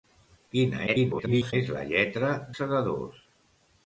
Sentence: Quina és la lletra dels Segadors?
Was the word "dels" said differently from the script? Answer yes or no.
yes